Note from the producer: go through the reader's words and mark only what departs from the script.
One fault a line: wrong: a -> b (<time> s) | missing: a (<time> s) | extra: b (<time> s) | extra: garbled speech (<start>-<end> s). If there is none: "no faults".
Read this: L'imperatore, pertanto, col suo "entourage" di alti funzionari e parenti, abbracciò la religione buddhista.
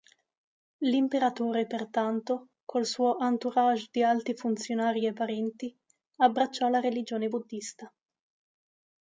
no faults